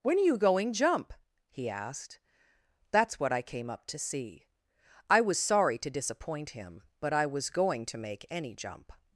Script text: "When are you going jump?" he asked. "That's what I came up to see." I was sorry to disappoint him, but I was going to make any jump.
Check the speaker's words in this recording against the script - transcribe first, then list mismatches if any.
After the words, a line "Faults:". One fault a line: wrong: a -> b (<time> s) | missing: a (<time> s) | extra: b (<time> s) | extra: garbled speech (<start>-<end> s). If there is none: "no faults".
"When are you going jump?" he asked. "That's what I came up to see." I was sorry to disappoint him, but I was going to make any jump.
Faults:
no faults